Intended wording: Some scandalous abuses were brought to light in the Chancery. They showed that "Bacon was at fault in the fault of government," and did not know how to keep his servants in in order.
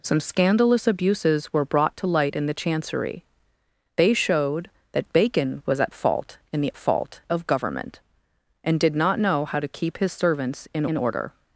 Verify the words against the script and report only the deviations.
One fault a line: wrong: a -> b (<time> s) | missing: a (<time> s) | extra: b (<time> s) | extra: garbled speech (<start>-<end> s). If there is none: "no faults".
no faults